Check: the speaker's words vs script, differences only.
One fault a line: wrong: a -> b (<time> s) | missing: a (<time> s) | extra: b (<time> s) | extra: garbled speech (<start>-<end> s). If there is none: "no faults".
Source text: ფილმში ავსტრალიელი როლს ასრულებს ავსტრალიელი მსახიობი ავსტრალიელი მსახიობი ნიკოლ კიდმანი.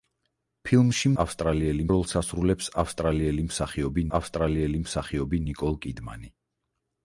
no faults